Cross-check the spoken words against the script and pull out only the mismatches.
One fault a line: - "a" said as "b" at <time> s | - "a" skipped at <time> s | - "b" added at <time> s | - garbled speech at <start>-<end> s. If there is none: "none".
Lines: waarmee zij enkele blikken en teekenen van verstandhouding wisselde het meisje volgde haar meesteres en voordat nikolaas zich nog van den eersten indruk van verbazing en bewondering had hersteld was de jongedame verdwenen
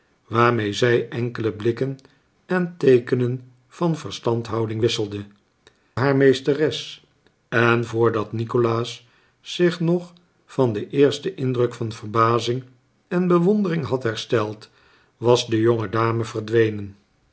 - "het meisje volgde" skipped at 5.2 s